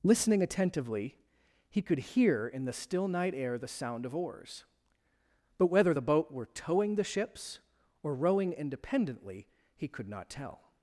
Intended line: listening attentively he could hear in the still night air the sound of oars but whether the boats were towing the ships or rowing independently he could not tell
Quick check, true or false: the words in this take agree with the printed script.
false